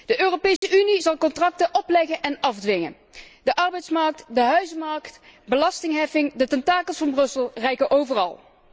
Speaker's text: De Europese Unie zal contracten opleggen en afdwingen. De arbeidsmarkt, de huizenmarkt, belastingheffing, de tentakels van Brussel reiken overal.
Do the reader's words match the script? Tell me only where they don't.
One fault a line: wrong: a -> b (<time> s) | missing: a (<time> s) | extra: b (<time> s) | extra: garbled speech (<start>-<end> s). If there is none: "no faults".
no faults